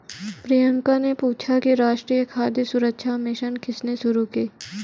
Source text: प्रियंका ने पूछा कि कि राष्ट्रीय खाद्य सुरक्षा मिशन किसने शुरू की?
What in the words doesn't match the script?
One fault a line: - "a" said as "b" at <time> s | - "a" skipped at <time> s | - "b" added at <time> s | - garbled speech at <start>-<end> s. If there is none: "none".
- "कि" skipped at 1.7 s